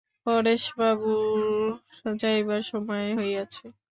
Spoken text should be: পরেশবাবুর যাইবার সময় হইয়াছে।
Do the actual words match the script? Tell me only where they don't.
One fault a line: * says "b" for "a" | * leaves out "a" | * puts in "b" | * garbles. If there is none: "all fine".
all fine